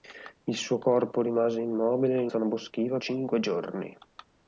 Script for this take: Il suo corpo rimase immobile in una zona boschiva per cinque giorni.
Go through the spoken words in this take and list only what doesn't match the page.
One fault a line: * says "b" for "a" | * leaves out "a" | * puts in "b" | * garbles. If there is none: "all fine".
* leaves out "una"
* leaves out "per"